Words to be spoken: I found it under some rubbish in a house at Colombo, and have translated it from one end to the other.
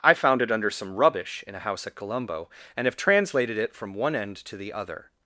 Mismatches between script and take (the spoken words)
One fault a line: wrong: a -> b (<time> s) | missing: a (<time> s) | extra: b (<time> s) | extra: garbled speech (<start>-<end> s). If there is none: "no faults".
no faults